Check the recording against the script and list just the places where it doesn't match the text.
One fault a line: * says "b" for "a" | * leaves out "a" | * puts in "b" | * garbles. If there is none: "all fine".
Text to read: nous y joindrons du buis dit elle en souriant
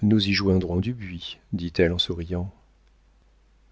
all fine